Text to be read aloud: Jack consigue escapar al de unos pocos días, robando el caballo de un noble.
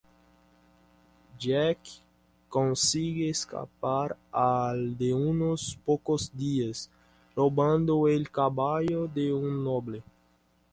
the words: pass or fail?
pass